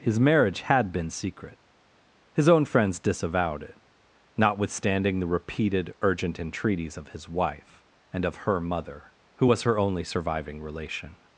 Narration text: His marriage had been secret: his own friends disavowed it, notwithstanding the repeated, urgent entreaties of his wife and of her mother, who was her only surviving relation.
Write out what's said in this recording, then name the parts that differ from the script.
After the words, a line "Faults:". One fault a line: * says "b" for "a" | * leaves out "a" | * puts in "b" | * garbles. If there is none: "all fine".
His marriage had been secret: his own friends disavowed it, notwithstanding the repeated, urgent entreaties of his wife and of her mother, who was her only surviving relation.
Faults:
all fine